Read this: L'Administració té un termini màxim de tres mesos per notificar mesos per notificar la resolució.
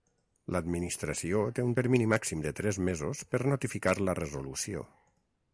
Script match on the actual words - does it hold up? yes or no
no